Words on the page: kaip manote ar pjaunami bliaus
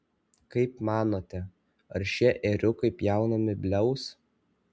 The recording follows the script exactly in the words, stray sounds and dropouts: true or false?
false